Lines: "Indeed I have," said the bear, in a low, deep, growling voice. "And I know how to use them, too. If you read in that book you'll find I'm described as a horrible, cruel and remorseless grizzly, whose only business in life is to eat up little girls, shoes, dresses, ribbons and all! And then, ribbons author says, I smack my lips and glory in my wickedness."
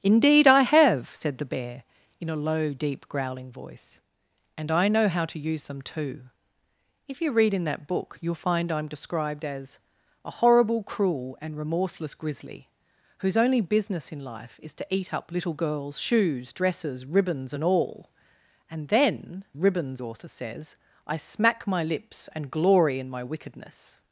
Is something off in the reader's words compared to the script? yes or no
no